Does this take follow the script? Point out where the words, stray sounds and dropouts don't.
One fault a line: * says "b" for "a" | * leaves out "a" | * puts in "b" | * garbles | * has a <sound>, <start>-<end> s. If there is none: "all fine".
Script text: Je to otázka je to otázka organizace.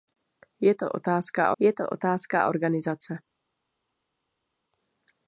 all fine